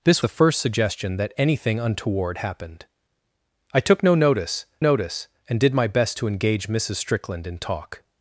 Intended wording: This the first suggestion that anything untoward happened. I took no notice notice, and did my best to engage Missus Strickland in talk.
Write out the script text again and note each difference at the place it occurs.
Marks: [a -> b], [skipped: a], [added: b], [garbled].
This the first suggestion that anything untoward happened. I took no notice notice, and did my best to engage Missus Strickland in talk.